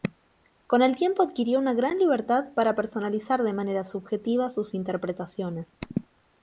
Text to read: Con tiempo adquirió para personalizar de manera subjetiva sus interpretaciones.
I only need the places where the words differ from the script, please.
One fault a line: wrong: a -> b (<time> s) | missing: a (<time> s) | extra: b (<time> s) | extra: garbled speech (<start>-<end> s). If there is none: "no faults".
extra: el (0.8 s)
extra: una gran libertad (1.6 s)